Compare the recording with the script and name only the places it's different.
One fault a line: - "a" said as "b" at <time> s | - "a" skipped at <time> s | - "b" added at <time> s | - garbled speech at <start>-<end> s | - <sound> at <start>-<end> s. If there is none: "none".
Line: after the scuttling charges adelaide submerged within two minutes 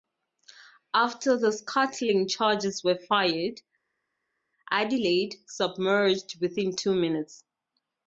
- "were fired" added at 2.8 s